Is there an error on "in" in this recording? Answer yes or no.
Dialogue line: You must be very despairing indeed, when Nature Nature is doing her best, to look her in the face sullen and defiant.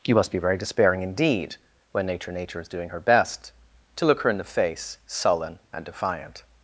no